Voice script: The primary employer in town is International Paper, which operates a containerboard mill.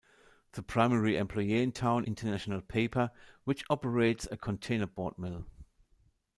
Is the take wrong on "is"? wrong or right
wrong